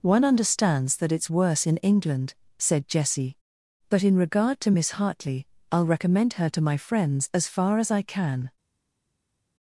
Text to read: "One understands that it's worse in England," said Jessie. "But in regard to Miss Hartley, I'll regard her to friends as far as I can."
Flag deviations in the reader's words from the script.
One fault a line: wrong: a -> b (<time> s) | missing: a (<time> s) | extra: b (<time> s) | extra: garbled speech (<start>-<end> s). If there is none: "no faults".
wrong: regard -> recommend (5.8 s)
extra: my (6.6 s)